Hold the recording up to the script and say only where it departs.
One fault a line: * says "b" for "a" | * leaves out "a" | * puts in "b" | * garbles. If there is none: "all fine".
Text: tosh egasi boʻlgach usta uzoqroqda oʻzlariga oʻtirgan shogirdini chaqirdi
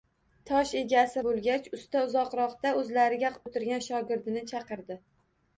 all fine